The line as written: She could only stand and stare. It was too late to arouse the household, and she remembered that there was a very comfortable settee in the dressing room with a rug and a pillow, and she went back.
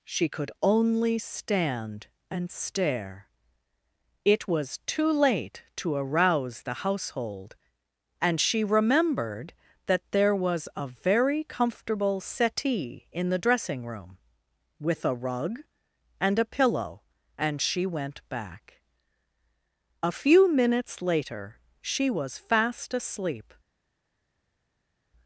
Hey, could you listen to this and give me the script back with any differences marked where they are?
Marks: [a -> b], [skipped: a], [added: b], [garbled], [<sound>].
She could only stand and stare. It was too late to arouse the household, and she remembered that there was a very comfortable settee in the dressing room with a rug and a pillow, and she went back. [added: A few minutes later she was fast asleep]